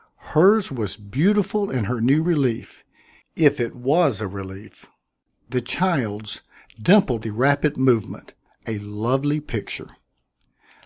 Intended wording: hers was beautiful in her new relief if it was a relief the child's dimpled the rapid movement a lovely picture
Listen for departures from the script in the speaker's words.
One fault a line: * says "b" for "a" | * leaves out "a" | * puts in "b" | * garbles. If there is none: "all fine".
all fine